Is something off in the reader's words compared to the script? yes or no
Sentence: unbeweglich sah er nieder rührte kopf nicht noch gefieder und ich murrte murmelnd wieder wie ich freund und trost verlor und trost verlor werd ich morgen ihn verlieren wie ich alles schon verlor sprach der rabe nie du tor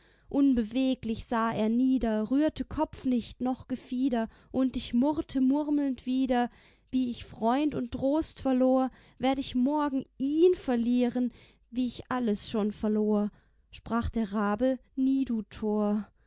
yes